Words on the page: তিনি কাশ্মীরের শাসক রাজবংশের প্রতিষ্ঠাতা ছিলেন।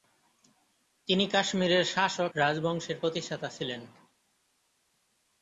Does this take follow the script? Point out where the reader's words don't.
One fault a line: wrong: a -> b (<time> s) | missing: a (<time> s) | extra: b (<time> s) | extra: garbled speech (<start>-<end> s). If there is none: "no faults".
no faults